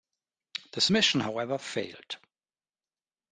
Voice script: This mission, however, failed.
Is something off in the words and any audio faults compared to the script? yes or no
no